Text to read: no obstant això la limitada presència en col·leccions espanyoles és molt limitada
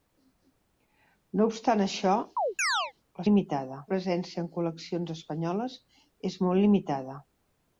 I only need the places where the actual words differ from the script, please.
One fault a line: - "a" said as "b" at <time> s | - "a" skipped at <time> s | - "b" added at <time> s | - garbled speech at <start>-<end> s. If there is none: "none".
none